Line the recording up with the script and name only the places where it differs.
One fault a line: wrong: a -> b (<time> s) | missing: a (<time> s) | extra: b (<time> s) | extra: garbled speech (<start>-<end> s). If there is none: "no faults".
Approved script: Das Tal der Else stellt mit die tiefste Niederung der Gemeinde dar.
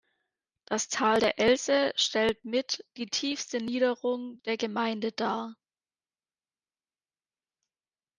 no faults